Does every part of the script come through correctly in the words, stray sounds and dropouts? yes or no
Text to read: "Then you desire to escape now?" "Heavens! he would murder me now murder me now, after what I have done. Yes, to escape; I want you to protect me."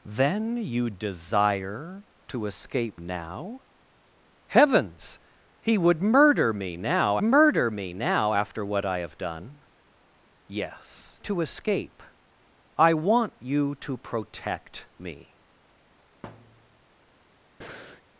no